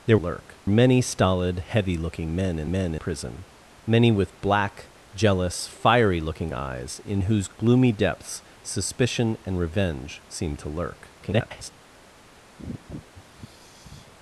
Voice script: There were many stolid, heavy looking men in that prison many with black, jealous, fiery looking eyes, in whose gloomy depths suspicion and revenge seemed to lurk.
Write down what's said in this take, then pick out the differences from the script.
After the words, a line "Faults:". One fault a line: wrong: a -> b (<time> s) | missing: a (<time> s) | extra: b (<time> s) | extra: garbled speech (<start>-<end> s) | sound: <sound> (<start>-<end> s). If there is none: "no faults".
There lurk many stolid, heavy looking men in men prison many with black, jealous, fiery looking eyes, in whose gloomy depths suspicion and revenge seemed to lurk. [garbled]
Faults:
wrong: were -> lurk (0.2 s)
wrong: that -> men (2.7 s)
extra: garbled speech (11.2-11.7 s)
sound: sigh (12.6-14.1 s)